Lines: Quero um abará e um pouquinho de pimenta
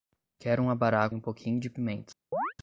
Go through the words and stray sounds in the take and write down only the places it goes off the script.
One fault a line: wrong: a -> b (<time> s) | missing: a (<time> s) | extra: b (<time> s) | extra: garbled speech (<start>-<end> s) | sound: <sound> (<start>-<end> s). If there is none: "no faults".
sound: chirp (2.3-2.5 s)